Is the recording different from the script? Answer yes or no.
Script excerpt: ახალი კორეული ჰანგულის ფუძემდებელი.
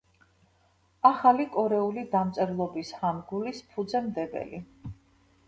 yes